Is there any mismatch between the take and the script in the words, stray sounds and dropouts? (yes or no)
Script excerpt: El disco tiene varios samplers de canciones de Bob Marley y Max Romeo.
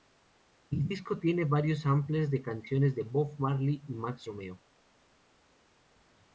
no